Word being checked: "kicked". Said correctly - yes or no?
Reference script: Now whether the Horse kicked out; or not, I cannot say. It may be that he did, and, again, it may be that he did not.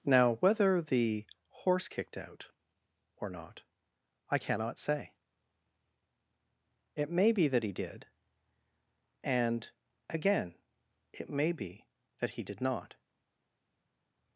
yes